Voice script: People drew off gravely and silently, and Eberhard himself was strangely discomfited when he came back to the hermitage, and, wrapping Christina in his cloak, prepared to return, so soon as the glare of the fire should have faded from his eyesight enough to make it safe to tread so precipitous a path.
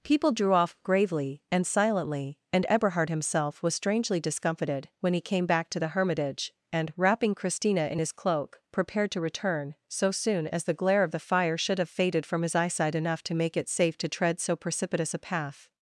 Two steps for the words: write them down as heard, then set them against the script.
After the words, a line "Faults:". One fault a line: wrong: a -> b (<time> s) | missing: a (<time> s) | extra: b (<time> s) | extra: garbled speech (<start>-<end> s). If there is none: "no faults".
People drew off gravely and silently, and Eberhard himself was strangely discomfited when he came back to the hermitage, and, wrapping Christina in his cloak, prepared to return, so soon as the glare of the fire should have faded from his eyesight enough to make it safe to tread so precipitous a path.
Faults:
no faults